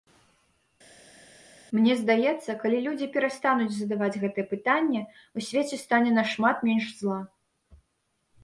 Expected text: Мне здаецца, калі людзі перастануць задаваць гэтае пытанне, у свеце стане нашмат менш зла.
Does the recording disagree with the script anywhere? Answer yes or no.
no